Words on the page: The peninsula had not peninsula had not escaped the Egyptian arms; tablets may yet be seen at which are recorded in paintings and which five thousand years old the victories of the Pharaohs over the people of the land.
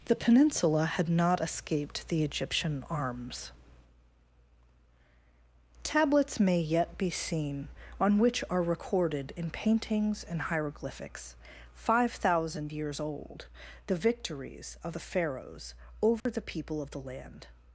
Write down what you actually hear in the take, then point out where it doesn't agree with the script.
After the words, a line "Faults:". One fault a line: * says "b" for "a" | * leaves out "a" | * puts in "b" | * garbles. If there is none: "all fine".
The peninsula had not escaped the Egyptian arms; tablets may yet be seen on which are recorded in paintings and hieroglyphics five thousand years old the victories of the Pharaohs over the people of the land.
Faults:
* leaves out "peninsula had not"
* says "on" for "at"
* says "hieroglyphics" for "which"